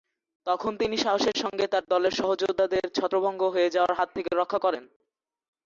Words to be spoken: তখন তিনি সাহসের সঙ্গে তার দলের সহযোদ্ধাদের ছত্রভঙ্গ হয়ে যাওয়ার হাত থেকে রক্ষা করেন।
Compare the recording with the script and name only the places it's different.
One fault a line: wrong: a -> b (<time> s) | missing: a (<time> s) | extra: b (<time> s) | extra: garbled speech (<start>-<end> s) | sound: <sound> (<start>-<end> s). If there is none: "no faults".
no faults